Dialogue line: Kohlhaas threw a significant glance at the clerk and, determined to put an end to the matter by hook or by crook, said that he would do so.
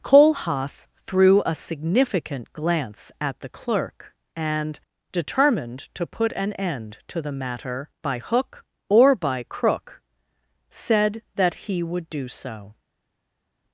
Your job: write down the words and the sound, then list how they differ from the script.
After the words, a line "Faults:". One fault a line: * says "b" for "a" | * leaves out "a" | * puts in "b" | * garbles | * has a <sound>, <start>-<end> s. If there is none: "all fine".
Kohlhaas threw a significant glance at the clerk and, determined to put an end to the matter by hook or by crook, said that he would do so.
Faults:
all fine